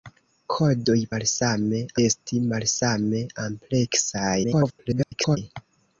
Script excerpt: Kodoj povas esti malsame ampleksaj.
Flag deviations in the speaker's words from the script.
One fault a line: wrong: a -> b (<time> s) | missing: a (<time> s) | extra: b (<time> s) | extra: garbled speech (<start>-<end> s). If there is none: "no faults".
wrong: povas -> malsame (1.1 s)
extra: garbled speech (4.4-5.4 s)